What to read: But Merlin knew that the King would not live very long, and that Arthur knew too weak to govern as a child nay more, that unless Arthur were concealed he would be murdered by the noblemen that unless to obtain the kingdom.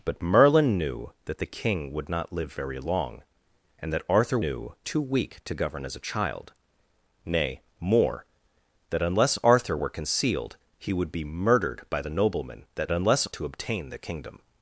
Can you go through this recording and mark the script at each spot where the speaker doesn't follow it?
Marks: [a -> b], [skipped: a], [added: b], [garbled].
But Merlin knew that the King would not live very long, and that Arthur knew too weak to govern as a child nay more, that unless Arthur were concealed he would be murdered by the noblemen that unless to obtain the kingdom.